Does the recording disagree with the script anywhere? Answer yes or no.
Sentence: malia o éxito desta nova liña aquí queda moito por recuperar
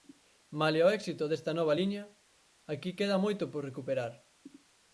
no